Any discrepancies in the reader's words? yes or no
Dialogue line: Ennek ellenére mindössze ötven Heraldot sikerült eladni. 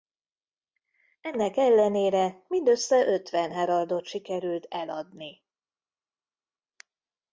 no